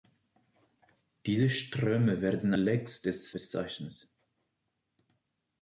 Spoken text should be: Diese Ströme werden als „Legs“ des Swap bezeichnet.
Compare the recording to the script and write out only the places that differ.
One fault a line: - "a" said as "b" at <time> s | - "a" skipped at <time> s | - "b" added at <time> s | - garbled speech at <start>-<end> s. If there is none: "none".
- "als" skipped at 2.5 s
- "Swap" skipped at 3.4 s